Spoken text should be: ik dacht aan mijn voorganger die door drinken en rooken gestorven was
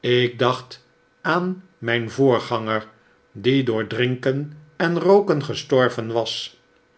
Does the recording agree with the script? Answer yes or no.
yes